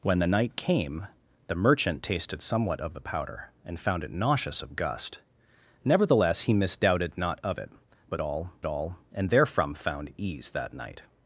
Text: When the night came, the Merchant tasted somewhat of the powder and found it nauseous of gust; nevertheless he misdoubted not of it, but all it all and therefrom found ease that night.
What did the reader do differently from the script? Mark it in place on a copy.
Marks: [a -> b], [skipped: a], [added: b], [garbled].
When the night came, the Merchant tasted somewhat of the powder and found it nauseous of gust; nevertheless he misdoubted not of it, but all it all and therefrom found ease that night.